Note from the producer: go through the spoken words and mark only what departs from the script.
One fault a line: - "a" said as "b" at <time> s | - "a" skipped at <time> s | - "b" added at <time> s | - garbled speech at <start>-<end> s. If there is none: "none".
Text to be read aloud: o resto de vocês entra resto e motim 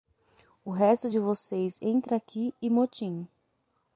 - "resto" said as "aqui" at 2.2 s